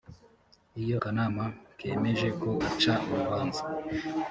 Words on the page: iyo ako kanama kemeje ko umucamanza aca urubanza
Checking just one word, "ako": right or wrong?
wrong